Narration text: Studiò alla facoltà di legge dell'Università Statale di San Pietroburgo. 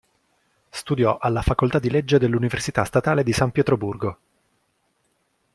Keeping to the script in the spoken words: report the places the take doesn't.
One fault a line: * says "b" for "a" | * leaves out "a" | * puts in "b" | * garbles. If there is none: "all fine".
all fine